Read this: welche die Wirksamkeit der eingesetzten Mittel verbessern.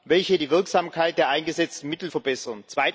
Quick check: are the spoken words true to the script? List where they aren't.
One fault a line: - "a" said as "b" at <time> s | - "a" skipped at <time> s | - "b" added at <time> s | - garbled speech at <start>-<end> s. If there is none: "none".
none